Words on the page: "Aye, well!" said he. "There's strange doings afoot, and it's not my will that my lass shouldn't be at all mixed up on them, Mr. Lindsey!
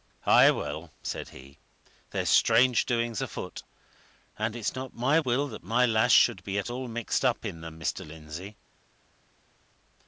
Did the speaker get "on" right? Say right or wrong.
wrong